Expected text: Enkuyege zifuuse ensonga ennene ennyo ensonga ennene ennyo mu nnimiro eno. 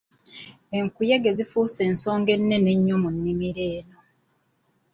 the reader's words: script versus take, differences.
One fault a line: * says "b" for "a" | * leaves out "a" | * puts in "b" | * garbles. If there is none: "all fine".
* leaves out "ensonga ennene ennyo"